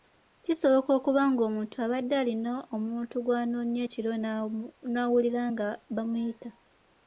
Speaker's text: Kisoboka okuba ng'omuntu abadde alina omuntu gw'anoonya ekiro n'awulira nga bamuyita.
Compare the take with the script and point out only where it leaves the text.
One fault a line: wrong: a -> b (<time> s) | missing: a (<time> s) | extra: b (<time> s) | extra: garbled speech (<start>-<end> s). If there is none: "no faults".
no faults